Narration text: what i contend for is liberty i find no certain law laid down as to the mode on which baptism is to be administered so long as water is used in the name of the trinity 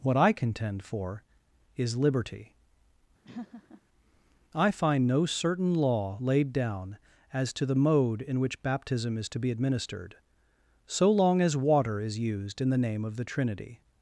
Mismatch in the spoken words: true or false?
true